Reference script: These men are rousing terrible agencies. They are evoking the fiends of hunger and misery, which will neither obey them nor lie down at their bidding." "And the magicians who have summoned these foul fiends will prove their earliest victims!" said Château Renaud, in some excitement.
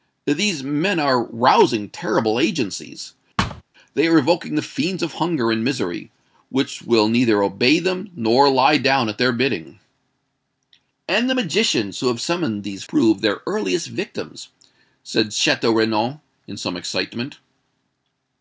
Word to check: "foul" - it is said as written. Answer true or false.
false